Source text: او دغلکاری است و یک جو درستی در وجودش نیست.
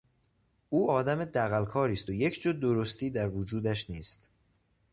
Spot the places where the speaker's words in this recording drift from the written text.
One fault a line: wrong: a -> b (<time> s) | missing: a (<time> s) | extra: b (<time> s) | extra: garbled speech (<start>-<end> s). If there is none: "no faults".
extra: آدم (0.9 s)